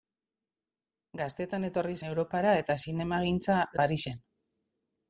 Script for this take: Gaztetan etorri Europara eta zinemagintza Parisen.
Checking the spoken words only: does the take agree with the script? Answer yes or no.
yes